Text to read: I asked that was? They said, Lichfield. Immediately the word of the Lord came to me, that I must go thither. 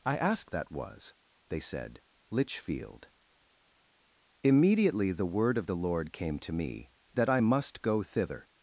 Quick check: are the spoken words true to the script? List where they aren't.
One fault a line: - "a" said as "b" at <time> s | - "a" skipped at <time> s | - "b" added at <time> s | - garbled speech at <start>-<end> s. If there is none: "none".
none